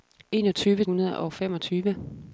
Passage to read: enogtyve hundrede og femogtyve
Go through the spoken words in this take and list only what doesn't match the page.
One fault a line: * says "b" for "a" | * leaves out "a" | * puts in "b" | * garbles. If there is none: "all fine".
all fine